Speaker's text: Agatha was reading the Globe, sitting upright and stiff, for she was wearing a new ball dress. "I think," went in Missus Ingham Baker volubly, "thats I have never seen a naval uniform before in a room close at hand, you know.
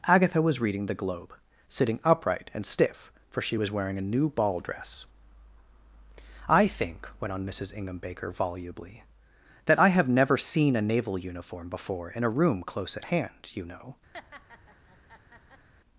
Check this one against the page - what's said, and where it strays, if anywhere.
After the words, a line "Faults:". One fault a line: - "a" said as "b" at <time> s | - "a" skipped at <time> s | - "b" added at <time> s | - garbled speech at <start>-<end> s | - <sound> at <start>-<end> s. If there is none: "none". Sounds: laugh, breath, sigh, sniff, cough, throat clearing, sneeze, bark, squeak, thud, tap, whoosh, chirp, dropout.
Agatha was reading the Globe, sitting upright and stiff, for she was wearing a new ball dress. "I think," went on Missus Ingham Baker volubly, "that I have never seen a naval uniform before in a room close at hand, you know.
Faults:
- "in" said as "on" at 7.3 s
- "thats" said as "that" at 9.6 s
- laugh at 14.1-15.7 s